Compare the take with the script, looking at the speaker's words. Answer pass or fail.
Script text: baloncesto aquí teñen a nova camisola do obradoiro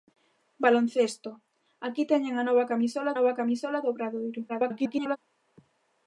fail